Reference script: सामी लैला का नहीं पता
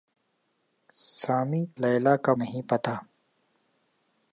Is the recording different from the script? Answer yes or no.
no